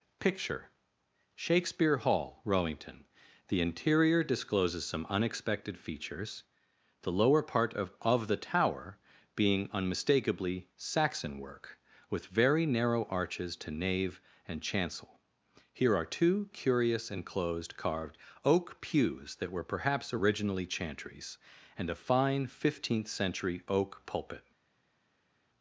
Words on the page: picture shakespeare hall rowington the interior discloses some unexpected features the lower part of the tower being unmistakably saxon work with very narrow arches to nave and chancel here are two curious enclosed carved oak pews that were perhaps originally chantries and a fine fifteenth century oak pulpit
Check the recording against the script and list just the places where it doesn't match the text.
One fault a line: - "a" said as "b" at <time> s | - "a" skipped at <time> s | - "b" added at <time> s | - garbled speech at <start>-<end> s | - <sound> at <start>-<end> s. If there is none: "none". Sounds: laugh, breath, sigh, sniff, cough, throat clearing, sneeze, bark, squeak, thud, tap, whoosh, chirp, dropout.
- "of" added at 8.0 s